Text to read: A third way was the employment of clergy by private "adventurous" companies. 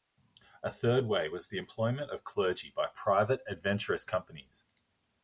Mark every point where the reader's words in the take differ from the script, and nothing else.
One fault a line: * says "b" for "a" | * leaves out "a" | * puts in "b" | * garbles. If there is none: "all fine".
all fine